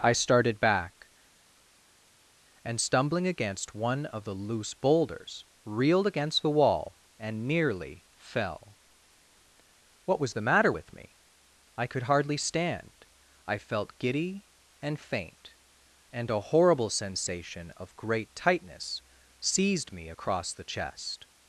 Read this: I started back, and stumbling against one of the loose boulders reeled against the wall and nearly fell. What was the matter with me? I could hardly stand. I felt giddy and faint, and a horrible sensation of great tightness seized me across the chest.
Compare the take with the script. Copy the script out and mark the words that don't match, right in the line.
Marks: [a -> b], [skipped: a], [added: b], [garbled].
I started back, and stumbling against one of the loose boulders reeled against the wall and nearly fell. What was the matter with me? I could hardly stand. I felt giddy and faint, and a horrible sensation of great tightness seized me across the chest.